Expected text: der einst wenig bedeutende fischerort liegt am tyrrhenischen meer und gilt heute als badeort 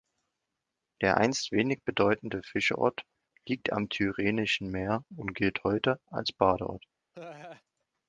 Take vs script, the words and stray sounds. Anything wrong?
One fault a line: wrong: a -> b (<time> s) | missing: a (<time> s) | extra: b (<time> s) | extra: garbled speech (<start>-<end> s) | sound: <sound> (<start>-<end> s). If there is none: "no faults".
sound: laugh (7.1-7.6 s)